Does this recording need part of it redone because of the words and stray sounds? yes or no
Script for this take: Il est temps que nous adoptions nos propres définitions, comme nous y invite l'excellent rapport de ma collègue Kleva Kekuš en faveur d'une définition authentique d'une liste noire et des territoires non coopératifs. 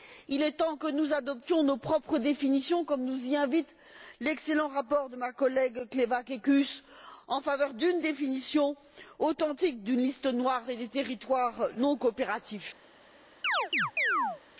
yes